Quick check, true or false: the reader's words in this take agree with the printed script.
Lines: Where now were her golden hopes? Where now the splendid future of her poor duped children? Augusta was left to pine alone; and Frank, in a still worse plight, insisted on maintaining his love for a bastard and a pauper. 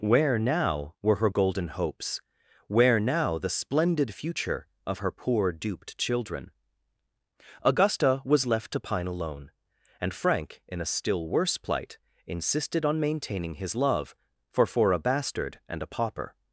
false